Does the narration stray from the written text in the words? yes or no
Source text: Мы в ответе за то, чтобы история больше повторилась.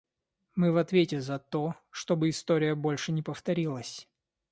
yes